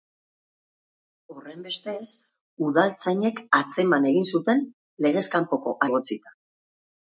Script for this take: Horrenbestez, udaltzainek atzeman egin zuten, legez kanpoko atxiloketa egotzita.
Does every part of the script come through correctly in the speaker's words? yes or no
no